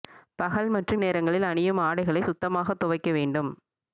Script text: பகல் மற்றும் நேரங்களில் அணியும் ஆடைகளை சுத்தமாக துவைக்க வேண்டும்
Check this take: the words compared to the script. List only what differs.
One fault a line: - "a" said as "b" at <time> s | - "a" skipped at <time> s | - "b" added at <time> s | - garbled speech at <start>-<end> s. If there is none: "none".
none